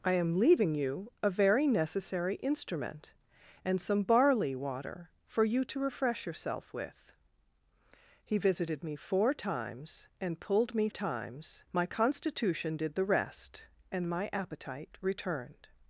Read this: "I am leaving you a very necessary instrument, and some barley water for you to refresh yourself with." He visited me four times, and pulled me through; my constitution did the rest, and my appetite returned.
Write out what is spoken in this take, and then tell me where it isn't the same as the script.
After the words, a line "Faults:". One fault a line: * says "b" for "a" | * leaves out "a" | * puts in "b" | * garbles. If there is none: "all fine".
"I am leaving you a very necessary instrument, and some barley water for you to refresh yourself with." He visited me four times, and pulled me times; my constitution did the rest, and my appetite returned.
Faults:
* says "times" for "through"